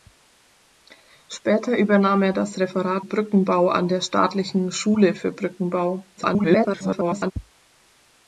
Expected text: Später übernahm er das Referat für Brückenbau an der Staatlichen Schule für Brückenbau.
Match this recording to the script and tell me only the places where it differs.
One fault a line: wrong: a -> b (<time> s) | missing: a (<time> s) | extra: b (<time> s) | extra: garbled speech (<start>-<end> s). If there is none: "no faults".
missing: für (3.0 s)
extra: garbled speech (6.2-7.3 s)